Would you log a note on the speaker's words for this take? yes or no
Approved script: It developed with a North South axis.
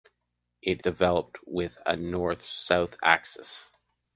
no